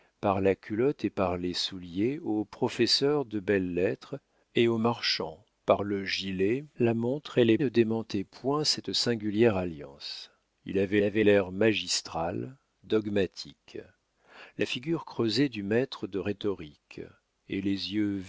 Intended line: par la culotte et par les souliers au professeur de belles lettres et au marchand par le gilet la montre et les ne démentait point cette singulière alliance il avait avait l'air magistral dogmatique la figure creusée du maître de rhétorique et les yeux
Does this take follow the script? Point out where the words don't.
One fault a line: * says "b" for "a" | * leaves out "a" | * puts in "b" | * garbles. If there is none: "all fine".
all fine